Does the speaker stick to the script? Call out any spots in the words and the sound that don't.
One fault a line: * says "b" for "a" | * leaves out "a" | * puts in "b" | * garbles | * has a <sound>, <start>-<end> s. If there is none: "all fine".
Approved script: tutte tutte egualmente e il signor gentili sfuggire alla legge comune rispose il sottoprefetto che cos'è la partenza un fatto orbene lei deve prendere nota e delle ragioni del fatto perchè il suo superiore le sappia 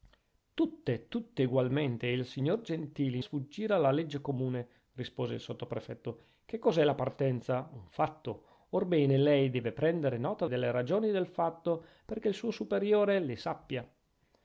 all fine